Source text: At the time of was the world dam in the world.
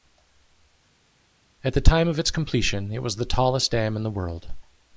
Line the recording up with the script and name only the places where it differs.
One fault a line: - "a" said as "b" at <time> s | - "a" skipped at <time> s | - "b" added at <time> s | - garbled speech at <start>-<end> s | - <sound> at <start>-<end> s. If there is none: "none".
- "its completion it" added at 2.2 s
- "world" said as "tallest" at 3.2 s